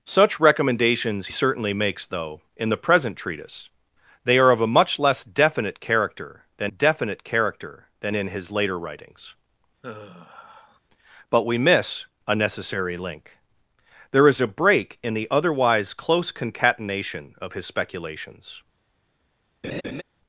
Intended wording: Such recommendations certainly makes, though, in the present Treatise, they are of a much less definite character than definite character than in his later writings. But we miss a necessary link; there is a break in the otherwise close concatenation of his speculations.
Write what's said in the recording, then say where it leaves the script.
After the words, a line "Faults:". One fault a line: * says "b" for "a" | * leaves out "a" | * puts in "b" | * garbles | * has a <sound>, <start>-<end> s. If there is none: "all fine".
Such recommendations certainly makes, though, in the present Treatise, they are of a much less definite character than definite character than in his later writings. But we miss a necessary link; there is a break in the otherwise close concatenation of his speculations.
Faults:
* has a sigh, 9.8-10.8 s
* has a laugh, 19.6-20.0 s